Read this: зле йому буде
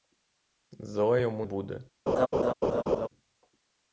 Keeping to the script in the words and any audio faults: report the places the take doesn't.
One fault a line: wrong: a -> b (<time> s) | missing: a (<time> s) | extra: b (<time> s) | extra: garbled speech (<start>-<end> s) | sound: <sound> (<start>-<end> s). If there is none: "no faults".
sound: laugh (2.1-3.1 s)